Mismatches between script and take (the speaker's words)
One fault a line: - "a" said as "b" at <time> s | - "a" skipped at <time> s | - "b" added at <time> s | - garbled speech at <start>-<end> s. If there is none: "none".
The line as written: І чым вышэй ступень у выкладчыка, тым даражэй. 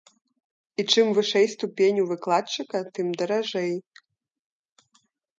none